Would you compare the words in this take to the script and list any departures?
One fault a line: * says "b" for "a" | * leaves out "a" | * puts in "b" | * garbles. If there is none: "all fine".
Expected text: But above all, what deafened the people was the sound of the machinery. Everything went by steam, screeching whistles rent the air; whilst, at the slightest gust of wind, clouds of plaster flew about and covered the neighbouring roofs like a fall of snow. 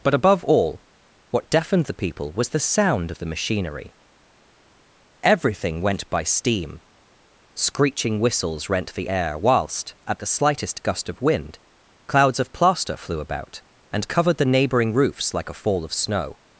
all fine